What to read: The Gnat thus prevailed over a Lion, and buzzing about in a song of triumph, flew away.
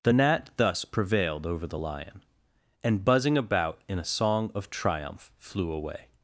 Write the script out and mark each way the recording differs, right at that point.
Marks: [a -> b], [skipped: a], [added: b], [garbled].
The Gnat thus prevailed over [a -> the] Lion, and buzzing about in a song of triumph, flew away.